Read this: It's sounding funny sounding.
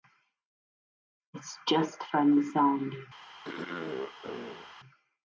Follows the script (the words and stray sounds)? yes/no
no